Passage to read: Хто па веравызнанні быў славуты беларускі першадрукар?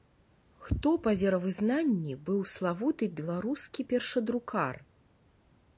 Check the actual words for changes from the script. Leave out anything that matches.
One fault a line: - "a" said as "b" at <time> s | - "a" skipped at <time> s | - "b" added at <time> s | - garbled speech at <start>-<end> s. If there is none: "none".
none